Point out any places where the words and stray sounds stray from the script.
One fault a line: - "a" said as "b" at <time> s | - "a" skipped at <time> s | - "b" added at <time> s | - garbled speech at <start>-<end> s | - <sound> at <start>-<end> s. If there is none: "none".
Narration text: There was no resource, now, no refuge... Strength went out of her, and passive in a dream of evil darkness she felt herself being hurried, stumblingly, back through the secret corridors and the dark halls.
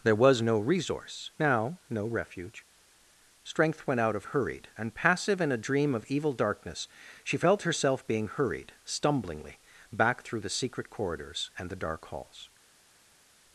- "her" said as "hurried" at 4.2 s